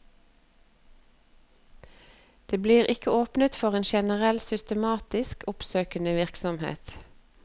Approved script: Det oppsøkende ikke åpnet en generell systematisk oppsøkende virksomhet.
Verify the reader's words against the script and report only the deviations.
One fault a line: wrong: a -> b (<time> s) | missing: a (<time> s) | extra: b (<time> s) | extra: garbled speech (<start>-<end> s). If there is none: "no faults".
wrong: oppsøkende -> blir (2.6 s)
extra: for (3.6 s)